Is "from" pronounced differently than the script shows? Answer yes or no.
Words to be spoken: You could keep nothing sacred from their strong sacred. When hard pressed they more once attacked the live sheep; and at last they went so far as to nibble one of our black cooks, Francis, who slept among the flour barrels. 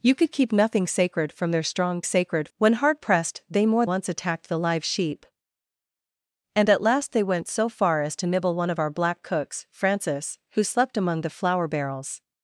no